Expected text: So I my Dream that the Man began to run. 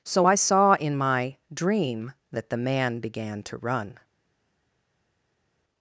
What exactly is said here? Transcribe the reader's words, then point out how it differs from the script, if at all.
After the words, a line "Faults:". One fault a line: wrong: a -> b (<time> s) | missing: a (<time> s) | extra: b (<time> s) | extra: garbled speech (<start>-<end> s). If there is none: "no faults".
So I saw in my Dream that the Man began to run.
Faults:
extra: saw in (0.4 s)